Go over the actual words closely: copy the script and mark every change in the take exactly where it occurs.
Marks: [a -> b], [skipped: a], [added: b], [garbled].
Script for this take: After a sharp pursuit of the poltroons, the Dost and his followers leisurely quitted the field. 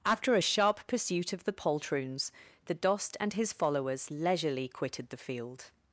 After a sharp pursuit of the poltroons, the Dost and his followers leisurely quitted the field.